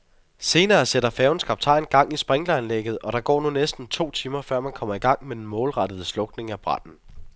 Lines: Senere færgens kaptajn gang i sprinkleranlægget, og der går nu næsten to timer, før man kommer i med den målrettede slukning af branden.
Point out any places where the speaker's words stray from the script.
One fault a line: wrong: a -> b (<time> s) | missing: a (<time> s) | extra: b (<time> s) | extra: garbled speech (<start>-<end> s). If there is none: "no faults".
extra: sætter (0.8 s)
extra: gang (5.0 s)